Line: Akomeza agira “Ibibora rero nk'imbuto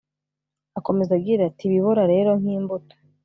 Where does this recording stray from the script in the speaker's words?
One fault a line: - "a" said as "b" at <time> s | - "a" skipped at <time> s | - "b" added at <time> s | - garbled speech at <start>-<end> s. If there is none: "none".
- "ati" added at 1.5 s